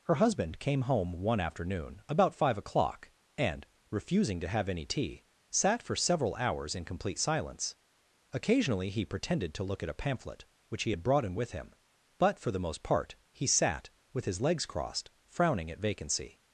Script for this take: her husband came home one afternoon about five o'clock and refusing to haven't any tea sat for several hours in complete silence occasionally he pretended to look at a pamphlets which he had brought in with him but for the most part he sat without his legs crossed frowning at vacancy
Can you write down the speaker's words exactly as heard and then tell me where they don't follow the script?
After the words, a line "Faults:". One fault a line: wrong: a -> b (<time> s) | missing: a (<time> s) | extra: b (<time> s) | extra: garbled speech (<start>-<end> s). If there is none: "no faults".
her husband came home one afternoon about five o'clock and refusing to have any tea sat for several hours in complete silence occasionally he pretended to look at a pamphlet which he had brought in with him but for the most part he sat with his legs crossed frowning at vacancy
Faults:
wrong: haven't -> have (4.5 s)
wrong: pamphlets -> pamphlet (10.0 s)
wrong: without -> with (14.1 s)